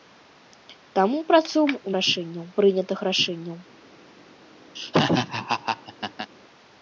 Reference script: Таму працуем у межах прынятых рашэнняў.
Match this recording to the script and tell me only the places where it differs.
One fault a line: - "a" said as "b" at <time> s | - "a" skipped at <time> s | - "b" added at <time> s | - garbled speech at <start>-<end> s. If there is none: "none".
- "межах" said as "рашэнняў" at 2.0 s